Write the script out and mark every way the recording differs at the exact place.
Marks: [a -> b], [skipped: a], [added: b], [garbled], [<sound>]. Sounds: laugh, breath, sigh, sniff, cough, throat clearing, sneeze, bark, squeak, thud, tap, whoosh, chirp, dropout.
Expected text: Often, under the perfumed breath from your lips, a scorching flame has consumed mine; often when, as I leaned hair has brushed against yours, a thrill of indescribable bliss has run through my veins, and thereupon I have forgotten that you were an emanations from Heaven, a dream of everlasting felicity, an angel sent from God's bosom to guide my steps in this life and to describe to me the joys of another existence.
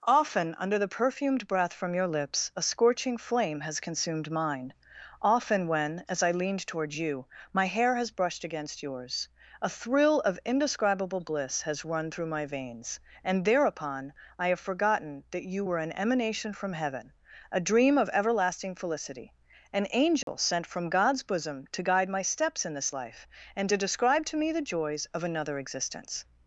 Often, under the perfumed breath from your lips, a scorching flame has consumed mine; often when, as I leaned [added: toward you my] hair has brushed against yours, a thrill of indescribable bliss has run through my veins, and thereupon I have forgotten that you were an [emanations -> emanation] from Heaven, a dream of everlasting felicity, an angel [dropout] sent from God's bosom to guide my steps in this life and to describe to me the joys of another existence.